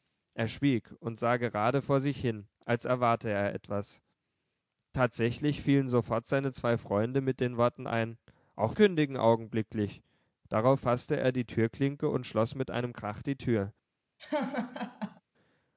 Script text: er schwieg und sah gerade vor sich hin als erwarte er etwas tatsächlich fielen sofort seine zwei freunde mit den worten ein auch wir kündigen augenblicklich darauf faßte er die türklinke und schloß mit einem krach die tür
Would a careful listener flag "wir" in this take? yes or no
yes